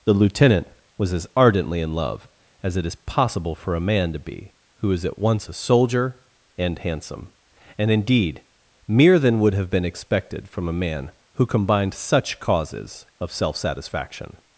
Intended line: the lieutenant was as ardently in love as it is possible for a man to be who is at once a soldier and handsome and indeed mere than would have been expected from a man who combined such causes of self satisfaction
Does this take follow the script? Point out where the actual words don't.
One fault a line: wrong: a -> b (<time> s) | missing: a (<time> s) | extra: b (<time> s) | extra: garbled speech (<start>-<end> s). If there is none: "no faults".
no faults